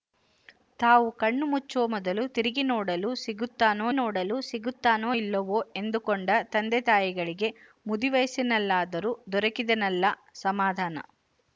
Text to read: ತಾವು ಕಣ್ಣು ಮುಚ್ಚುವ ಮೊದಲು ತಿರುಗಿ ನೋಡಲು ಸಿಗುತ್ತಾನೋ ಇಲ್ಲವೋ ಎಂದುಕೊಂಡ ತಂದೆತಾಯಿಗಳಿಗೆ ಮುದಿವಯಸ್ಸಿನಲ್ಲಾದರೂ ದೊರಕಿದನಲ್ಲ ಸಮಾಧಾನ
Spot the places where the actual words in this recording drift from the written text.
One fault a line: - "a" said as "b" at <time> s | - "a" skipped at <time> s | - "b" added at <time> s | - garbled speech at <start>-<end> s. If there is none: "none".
- "ನೋಡಲು ಸಿಗುತ್ತಾನೋ" added at 3.9 s